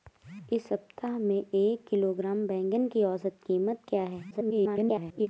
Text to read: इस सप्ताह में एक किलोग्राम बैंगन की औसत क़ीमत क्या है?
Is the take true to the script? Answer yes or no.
no